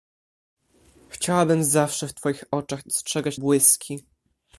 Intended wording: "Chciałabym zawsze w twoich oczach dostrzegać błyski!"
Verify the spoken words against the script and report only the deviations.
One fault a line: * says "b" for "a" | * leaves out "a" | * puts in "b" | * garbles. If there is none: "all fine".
all fine